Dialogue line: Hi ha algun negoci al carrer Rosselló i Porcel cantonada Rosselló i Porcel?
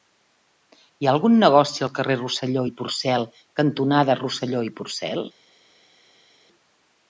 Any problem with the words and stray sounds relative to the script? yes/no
no